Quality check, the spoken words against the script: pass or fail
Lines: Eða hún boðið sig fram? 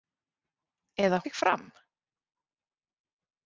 fail